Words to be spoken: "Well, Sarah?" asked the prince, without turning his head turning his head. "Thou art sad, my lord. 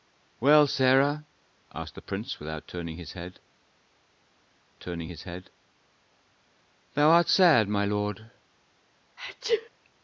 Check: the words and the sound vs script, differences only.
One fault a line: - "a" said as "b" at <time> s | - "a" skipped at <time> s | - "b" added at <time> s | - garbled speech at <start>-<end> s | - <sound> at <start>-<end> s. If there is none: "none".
- sneeze at 9.2-9.7 s